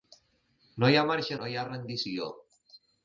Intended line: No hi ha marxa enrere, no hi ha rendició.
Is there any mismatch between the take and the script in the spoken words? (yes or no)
yes